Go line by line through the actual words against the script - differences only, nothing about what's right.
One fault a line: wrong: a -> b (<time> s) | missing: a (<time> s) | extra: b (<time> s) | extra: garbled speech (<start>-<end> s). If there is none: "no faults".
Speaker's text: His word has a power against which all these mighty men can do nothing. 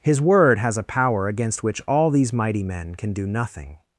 no faults